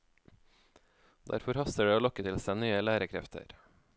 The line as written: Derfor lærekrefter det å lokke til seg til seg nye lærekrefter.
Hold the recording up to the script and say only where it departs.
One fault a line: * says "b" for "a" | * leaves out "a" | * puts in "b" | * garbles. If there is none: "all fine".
* says "haster" for "lærekrefter"
* leaves out "til seg"